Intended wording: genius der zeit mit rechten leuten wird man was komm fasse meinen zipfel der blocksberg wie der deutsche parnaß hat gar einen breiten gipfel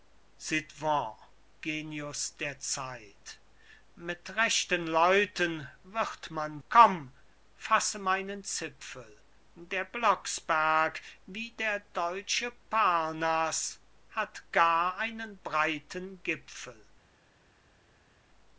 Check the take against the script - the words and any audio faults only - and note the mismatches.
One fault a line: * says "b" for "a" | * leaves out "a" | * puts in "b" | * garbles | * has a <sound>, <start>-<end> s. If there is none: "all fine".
* leaves out "was"